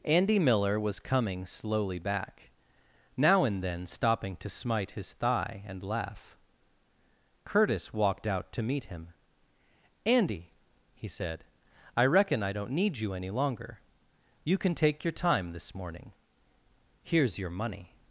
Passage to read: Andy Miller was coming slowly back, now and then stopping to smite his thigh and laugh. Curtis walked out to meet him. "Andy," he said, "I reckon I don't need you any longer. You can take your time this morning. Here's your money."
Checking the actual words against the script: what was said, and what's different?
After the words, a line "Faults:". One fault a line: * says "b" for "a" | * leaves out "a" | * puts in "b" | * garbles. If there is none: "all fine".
Andy Miller was coming slowly back, now and then stopping to smite his thigh and laugh. Curtis walked out to meet him. "Andy," he said, "I reckon I don't need you any longer. You can take your time this morning. Here's your money."
Faults:
all fine